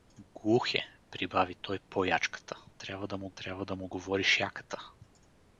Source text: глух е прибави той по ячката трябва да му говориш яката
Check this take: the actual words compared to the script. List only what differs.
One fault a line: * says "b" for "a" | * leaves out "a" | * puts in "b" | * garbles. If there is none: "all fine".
* puts in "трябва да му"